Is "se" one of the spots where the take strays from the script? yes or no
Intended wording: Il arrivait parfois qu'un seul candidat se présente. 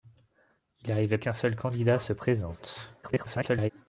no